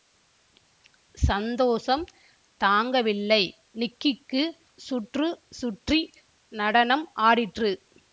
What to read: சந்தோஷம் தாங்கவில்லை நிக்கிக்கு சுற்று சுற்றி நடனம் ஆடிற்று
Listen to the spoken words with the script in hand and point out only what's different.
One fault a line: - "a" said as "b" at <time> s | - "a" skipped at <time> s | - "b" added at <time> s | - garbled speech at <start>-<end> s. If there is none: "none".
none